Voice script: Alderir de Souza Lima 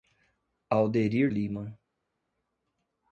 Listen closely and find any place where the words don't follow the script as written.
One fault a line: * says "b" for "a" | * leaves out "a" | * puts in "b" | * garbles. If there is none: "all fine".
* leaves out "de Souza"